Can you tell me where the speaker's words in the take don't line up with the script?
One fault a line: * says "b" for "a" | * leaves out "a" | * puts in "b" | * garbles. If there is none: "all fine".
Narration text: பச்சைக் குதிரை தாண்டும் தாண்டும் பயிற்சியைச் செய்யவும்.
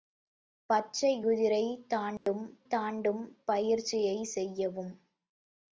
all fine